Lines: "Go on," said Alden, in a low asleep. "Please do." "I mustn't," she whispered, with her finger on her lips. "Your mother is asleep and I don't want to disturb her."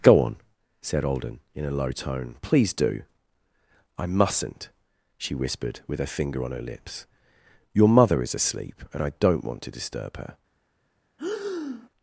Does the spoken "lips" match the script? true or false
true